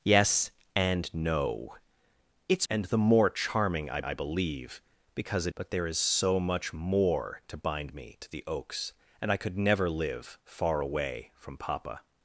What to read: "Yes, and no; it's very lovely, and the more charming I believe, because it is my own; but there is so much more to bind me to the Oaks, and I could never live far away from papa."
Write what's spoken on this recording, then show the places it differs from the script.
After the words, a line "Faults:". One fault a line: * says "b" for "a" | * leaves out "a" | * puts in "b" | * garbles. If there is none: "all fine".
"Yes, and no; it's and the more charming I I believe, because it; but there is so much more to bind me to the Oaks, and I could never live far away from papa."
Faults:
* leaves out "very lovely"
* puts in "I"
* leaves out "is my own"